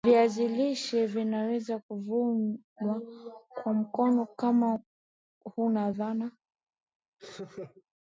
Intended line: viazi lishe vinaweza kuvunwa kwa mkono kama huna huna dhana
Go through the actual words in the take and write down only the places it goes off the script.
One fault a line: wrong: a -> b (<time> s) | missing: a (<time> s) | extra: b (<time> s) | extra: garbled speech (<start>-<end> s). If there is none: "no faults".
missing: huna (5.9 s)